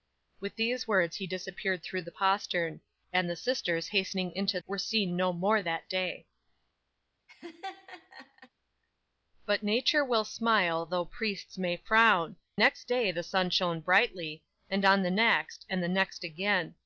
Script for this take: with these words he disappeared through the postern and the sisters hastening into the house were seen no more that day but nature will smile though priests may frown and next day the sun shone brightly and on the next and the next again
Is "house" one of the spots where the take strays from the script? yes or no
yes